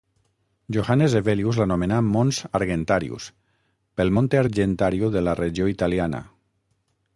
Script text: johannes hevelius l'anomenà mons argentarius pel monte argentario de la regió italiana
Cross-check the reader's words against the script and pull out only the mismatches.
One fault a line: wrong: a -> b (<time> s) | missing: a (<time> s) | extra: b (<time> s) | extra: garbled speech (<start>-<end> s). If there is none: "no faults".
no faults